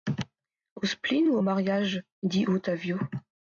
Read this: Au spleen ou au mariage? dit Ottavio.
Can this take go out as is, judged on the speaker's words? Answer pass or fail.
pass